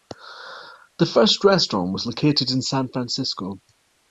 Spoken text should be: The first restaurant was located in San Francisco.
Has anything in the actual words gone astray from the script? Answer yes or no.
no